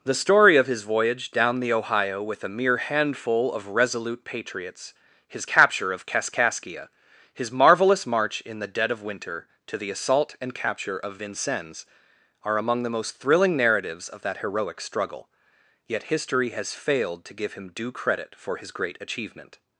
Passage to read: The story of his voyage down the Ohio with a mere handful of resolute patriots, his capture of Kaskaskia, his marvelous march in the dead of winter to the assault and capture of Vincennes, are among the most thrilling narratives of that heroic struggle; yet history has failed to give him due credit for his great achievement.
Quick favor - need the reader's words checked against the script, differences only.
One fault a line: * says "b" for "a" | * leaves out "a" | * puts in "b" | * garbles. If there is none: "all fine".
all fine